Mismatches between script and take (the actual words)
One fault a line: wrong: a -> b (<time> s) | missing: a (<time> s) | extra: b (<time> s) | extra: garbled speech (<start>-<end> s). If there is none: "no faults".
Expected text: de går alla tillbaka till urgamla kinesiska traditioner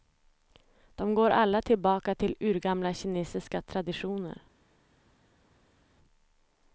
no faults